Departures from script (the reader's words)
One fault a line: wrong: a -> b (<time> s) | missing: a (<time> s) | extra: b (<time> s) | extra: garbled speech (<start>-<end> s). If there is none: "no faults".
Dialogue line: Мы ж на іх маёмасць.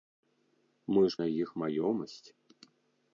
no faults